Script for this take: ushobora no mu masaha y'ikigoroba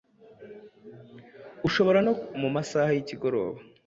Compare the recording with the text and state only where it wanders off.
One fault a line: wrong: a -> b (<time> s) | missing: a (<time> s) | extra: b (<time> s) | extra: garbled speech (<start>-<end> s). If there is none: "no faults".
no faults